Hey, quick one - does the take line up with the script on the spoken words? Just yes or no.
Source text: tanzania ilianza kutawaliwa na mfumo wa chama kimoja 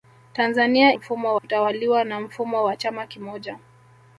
no